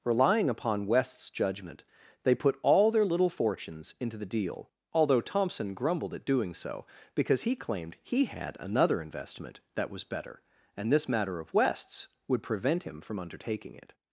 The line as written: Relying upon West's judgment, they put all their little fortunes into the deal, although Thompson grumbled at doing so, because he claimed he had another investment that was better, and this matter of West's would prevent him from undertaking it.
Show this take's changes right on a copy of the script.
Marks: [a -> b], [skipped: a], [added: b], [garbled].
Relying upon West's judgment, they put all their little fortunes into the deal, although Thompson grumbled at doing so, because he claimed he had another investment that was better, and this matter of West's would prevent him from undertaking it.